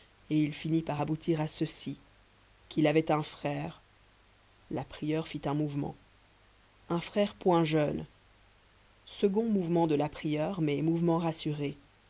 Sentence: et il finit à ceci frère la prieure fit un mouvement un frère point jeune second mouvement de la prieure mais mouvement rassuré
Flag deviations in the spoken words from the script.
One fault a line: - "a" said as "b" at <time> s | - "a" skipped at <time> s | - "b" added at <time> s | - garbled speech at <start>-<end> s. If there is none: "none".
- "par aboutir" added at 0.8 s
- "qu'il avait un" added at 2.7 s